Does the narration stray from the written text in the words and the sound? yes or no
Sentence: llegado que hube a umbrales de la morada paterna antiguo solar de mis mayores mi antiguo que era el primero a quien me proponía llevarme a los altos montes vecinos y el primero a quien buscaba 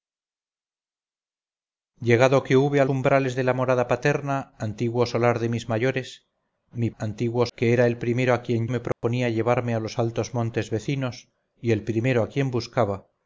yes